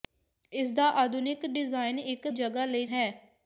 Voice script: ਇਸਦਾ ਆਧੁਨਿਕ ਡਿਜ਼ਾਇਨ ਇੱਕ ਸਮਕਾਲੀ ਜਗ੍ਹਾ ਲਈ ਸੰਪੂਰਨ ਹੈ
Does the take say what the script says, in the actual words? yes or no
no